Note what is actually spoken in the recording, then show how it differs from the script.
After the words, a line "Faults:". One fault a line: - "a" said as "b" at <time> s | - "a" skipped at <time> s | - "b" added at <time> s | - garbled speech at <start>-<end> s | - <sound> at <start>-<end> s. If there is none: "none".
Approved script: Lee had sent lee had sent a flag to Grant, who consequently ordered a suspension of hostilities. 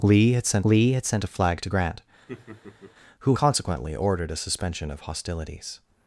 Lee had sent lee had sent a flag to Grant, who consequently ordered a suspension of hostilities.
Faults:
- laugh at 2.3-2.9 s